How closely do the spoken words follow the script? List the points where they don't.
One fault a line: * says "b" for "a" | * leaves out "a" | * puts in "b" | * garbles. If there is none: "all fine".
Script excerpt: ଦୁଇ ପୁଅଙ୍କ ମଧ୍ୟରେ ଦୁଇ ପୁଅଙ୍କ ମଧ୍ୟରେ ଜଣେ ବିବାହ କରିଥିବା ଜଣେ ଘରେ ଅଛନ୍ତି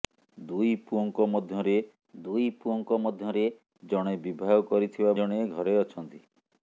all fine